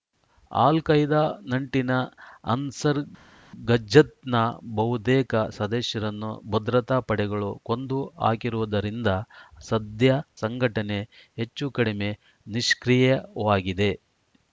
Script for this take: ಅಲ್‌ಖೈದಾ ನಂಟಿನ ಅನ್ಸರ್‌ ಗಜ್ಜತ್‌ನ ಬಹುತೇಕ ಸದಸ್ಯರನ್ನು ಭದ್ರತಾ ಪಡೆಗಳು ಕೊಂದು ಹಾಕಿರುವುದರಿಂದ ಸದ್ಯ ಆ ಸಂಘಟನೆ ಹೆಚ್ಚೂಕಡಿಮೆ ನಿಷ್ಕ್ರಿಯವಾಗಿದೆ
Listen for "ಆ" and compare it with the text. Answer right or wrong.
wrong